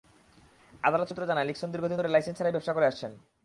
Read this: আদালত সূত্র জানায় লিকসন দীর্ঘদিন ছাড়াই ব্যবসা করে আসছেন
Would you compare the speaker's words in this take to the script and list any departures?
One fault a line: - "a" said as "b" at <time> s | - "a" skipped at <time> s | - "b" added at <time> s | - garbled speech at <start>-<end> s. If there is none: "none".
- "ধরে লাইসেন্স" added at 2.0 s